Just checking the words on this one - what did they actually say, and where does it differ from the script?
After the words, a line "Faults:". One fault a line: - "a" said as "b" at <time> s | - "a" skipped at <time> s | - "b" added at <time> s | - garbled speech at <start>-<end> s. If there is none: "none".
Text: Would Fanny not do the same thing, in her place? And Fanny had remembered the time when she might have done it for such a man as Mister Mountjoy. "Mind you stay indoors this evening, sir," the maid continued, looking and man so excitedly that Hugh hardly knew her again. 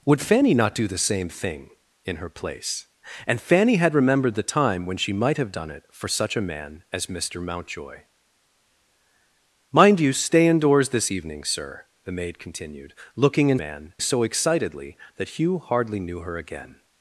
Would Fanny not do the same thing, in her place? And Fanny had remembered the time when she might have done it for such a man as Mister Mountjoy. "Mind you stay indoors this evening, sir," the maid continued, looking and man so excitedly that Hugh hardly knew her again.
Faults:
none